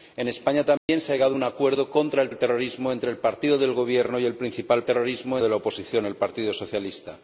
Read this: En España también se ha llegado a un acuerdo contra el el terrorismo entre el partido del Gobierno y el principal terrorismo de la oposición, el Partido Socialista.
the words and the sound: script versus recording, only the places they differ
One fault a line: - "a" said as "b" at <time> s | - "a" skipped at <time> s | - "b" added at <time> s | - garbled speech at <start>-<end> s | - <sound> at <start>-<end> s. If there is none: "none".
- dropout at 0.8-0.9 s